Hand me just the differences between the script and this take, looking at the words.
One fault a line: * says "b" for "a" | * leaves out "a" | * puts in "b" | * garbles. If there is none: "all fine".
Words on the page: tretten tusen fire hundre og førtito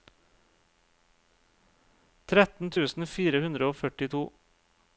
all fine